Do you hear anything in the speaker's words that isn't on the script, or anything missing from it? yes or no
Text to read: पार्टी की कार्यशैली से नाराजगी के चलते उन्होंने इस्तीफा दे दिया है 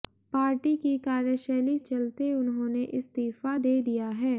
yes